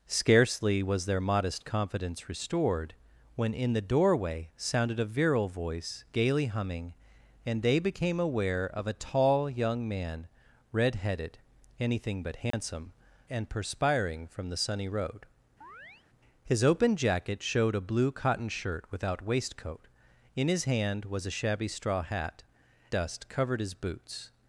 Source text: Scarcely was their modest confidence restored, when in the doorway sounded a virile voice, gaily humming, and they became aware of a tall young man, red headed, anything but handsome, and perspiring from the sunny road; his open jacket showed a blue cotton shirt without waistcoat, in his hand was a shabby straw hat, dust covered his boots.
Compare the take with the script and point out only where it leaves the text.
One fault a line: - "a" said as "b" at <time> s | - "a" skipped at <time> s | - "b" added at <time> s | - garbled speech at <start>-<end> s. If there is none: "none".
none